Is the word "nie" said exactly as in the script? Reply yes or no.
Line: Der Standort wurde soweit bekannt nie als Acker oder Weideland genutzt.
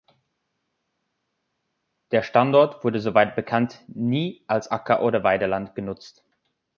yes